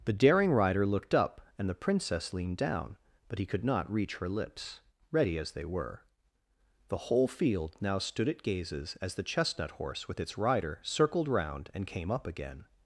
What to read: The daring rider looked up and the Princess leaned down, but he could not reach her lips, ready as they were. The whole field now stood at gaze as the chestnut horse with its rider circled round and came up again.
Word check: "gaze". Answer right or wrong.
wrong